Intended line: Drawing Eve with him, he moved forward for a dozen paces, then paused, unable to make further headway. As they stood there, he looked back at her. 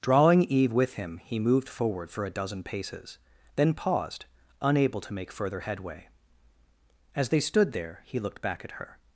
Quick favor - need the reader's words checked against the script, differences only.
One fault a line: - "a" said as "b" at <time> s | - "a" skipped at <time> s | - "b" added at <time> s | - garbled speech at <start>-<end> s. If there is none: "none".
none